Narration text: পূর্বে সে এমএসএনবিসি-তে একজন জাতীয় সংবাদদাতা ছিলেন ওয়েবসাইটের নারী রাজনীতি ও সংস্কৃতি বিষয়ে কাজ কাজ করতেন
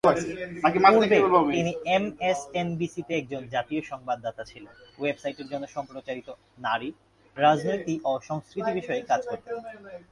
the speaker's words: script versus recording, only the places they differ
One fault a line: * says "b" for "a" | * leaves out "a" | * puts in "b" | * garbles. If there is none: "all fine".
* says "তিনি" for "সে"
* puts in "জন্য সম্প্রচারিত"
* leaves out "কাজ"